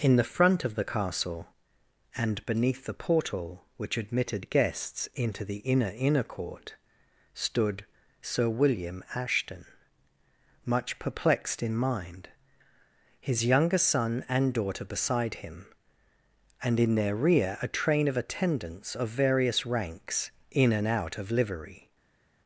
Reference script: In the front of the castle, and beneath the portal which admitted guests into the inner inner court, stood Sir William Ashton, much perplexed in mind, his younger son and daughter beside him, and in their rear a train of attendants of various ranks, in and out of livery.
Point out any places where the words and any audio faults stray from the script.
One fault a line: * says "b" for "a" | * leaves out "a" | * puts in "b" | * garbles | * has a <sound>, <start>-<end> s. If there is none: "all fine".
all fine